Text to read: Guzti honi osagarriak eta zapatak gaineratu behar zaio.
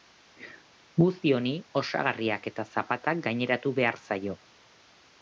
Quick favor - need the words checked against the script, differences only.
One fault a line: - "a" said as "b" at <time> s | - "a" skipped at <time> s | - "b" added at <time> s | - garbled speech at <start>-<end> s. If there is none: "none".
none